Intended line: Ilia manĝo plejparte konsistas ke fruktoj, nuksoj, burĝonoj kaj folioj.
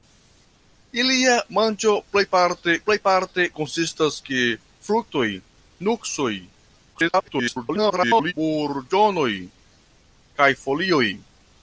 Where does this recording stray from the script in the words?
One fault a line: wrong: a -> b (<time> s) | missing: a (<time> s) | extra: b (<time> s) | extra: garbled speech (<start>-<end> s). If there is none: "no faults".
extra: plejparte (2.9 s)
extra: garbled speech (6.9-8.3 s)